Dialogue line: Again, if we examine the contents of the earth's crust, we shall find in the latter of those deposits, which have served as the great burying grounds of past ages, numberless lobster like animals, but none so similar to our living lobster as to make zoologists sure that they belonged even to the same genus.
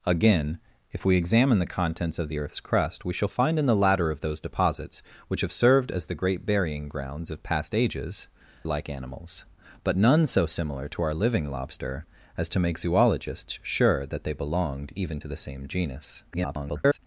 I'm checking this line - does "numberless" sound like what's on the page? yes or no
no